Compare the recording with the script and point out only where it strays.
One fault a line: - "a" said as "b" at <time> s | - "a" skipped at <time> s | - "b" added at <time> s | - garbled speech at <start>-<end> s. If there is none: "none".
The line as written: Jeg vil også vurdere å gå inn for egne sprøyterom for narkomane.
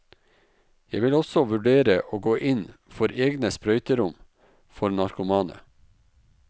none